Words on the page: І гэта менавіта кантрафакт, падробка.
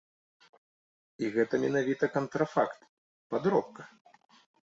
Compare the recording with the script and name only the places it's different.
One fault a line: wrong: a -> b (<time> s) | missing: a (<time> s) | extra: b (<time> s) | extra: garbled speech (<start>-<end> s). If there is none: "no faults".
no faults